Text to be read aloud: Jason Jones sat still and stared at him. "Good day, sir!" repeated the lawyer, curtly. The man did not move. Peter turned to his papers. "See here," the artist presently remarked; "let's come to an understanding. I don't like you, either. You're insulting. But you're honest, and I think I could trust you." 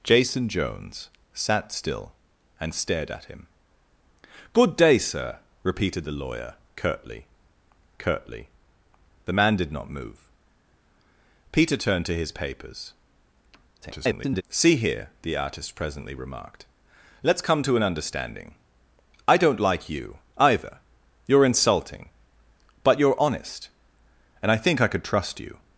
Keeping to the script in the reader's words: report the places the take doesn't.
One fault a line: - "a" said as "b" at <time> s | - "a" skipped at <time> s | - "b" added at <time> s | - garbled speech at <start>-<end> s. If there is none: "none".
- "curtly" added at 8.0 s
- garbled speech at 13.8-14.4 s